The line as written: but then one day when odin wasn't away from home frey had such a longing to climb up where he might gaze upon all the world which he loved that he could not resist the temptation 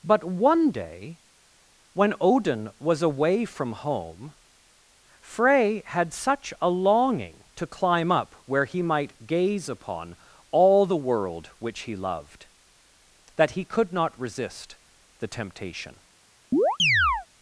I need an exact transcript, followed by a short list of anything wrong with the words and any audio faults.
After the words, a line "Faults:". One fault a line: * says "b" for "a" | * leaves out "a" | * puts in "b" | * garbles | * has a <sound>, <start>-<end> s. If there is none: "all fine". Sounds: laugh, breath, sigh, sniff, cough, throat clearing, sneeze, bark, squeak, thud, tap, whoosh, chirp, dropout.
but one day when odin was away from home frey had such a longing to climb up where he might gaze upon all the world which he loved that he could not resist the temptation
Faults:
* leaves out "then"
* says "was" for "wasn't"
* has a chirp, 16.5-17.3 s